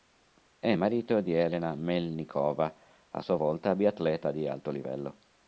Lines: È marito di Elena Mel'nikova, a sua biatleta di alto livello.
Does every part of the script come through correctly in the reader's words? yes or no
no